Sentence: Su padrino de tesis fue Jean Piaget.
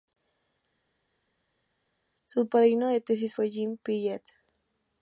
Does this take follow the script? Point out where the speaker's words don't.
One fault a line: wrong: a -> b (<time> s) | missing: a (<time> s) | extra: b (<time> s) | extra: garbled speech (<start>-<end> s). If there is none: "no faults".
no faults